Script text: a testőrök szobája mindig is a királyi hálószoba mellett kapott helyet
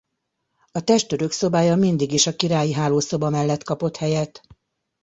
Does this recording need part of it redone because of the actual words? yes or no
no